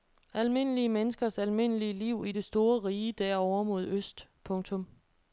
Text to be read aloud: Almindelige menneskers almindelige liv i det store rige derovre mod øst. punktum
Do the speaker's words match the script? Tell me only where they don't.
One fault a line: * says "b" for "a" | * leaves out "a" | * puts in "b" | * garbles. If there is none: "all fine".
all fine